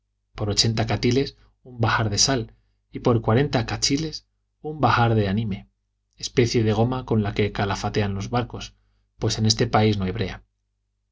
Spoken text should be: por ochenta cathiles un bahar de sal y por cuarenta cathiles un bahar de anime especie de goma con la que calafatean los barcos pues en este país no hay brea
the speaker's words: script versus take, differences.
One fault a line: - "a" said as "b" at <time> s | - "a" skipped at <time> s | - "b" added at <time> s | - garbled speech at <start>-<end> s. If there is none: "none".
none